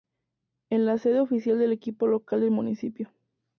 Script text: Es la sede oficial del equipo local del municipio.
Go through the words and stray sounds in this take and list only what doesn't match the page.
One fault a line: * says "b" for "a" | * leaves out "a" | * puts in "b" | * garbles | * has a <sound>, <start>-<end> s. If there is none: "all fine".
all fine